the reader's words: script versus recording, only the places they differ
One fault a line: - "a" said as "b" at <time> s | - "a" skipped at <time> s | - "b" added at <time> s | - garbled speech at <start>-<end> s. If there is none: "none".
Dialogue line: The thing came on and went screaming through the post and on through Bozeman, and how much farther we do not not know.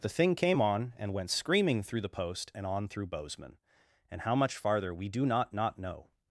none